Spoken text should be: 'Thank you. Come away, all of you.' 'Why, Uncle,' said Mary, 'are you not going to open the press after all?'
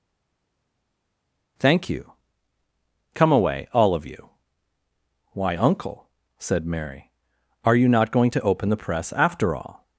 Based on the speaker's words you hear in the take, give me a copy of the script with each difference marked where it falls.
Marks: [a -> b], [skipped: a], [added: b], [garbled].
'Thank you. Come away, all of you.' 'Why, Uncle,' said Mary, 'are you not going to open the press after all?'